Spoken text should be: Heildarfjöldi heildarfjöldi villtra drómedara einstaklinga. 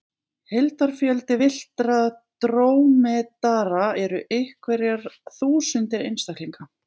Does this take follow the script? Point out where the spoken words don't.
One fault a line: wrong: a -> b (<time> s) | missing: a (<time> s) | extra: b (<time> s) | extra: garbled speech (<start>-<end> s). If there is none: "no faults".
missing: heildarfjöldi (1.4 s)
extra: eru einhverjar þúsundir (4.0 s)